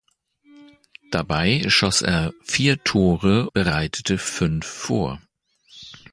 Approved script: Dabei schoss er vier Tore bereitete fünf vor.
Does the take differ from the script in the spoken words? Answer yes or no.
no